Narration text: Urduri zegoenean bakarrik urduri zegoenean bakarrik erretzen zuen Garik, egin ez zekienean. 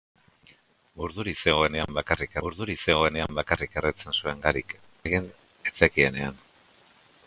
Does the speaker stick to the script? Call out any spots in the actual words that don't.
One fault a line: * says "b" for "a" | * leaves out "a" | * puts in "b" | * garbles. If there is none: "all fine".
all fine